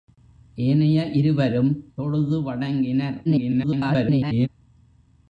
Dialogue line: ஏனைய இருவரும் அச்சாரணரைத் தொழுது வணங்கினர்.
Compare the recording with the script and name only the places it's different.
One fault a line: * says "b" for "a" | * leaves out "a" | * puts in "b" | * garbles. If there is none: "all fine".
* leaves out "அச்சாரணரைத்"
* garbles